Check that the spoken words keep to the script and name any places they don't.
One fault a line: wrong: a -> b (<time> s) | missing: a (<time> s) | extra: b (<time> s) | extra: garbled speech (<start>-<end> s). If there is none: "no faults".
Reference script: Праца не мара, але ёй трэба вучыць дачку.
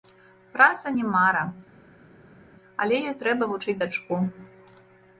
no faults